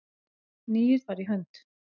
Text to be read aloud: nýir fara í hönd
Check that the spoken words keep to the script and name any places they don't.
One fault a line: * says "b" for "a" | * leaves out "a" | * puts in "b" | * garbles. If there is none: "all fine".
all fine